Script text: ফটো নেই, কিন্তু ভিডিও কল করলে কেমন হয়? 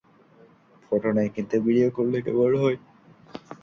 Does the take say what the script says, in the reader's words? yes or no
no